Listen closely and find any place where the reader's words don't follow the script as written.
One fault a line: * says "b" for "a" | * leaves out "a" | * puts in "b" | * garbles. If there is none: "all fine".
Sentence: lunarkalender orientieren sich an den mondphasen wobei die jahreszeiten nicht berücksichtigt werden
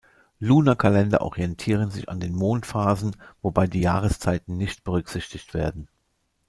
all fine